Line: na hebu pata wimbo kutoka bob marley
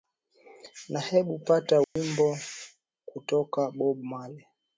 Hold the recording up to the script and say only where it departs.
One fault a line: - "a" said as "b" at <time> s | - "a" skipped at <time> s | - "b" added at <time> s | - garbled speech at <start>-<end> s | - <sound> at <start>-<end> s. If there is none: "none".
- dropout at 1.8-2.0 s